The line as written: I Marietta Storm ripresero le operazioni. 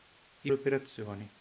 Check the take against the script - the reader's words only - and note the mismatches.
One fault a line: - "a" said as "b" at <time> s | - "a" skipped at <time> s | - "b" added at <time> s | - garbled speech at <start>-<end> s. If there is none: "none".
- "Marietta Storm ripresero" skipped at 0.5 s